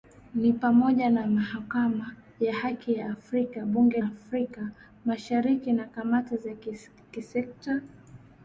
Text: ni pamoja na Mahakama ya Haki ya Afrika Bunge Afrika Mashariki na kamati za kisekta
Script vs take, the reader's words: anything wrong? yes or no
no